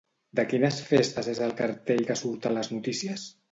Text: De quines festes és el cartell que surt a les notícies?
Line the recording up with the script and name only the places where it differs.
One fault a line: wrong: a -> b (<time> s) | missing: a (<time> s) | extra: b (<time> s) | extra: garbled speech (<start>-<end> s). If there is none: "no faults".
no faults